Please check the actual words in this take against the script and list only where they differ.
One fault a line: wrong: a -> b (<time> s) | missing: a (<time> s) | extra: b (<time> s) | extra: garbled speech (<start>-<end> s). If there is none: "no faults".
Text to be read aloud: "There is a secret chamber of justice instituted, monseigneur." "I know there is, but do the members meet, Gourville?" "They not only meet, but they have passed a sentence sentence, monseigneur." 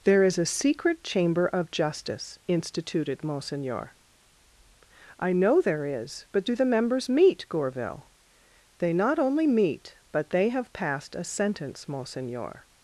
missing: sentence (11.9 s)